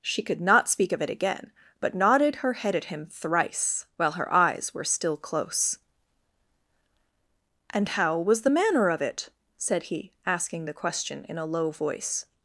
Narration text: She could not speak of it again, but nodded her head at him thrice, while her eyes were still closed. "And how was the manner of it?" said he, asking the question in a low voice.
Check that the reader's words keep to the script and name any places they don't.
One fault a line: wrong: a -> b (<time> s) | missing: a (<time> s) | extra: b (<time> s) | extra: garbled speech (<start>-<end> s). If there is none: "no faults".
wrong: closed -> close (5.2 s)